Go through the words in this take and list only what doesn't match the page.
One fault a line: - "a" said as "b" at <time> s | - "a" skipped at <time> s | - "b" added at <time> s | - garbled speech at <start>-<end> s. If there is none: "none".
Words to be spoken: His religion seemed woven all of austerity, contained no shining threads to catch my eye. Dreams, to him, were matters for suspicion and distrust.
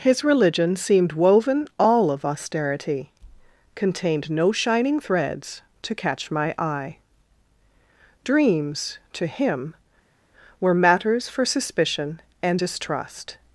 none